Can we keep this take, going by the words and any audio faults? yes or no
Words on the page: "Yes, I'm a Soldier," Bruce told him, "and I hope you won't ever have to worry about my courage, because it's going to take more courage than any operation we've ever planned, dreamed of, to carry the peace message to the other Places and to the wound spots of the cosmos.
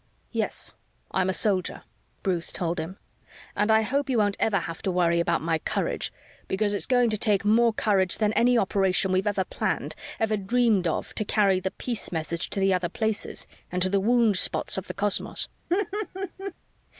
no